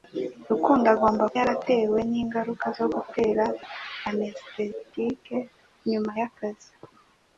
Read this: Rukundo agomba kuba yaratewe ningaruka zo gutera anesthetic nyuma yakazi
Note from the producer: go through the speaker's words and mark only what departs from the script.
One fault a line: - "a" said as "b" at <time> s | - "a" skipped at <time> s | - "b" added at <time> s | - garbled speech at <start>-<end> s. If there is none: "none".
- "kuba" skipped at 1.2 s